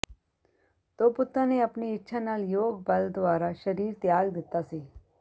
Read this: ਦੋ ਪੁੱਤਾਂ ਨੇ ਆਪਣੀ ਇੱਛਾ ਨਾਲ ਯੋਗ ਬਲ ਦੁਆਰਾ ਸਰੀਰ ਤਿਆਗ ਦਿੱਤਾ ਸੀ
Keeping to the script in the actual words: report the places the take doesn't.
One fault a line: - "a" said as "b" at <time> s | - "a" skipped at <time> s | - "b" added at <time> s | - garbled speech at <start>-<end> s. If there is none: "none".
none